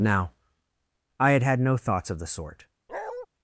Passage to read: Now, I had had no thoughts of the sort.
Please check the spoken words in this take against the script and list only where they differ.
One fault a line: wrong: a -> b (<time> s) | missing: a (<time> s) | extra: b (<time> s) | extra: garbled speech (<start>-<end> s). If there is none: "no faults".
no faults